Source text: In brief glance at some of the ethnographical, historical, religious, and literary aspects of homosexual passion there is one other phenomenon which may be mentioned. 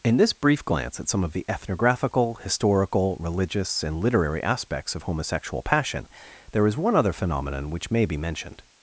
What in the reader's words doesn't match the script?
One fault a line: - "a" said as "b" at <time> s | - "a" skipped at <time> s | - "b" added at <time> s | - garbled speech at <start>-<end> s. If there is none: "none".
- "this" added at 0.2 s